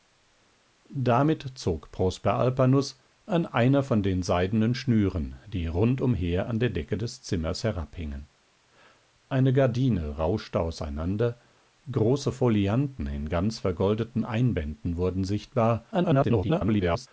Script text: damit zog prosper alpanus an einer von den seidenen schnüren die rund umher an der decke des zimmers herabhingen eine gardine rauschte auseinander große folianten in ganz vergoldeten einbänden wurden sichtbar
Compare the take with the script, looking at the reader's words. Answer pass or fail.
fail